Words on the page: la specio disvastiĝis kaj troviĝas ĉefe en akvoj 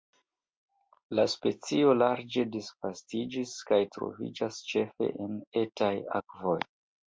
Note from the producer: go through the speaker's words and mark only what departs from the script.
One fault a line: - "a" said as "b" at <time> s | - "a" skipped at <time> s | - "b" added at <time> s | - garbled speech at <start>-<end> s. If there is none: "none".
- "larĝe" added at 2.0 s
- "etaj" added at 5.7 s